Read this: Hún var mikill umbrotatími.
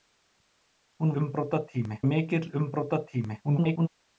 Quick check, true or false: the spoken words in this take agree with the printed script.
false